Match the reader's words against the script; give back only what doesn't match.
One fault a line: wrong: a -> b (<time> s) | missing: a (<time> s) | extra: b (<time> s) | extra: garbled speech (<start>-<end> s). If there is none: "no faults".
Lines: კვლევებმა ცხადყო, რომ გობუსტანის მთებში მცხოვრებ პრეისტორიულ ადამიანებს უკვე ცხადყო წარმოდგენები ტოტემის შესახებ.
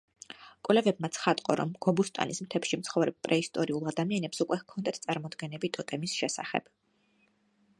wrong: ცხადყო -> ჰქონდათ (4.6 s)